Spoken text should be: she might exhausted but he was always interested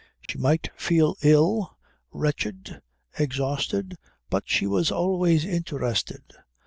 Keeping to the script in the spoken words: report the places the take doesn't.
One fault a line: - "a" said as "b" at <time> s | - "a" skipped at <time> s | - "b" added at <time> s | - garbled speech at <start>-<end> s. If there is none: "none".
- "feel ill wretched" added at 0.8 s
- "he" said as "she" at 4.5 s